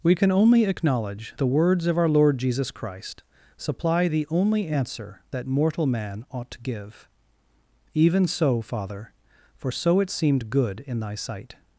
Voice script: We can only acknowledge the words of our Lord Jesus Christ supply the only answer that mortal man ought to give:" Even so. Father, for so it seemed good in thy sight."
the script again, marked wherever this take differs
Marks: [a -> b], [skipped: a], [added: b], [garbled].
We can only acknowledge the words of our Lord Jesus Christ supply the only answer that mortal man ought to give:" Even so. Father, for so it seemed good in thy sight."